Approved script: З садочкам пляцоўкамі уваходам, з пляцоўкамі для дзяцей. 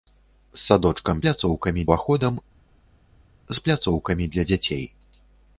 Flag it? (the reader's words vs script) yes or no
no